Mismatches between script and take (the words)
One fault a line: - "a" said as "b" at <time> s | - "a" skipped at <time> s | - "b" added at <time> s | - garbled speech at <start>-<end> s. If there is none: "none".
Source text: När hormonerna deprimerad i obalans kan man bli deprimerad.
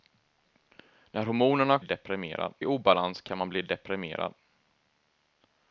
none